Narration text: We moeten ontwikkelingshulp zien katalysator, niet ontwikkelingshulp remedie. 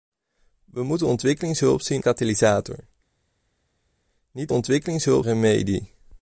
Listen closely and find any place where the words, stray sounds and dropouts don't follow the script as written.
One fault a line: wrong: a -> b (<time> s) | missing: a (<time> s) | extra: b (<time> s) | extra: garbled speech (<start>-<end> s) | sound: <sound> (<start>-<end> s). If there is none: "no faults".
no faults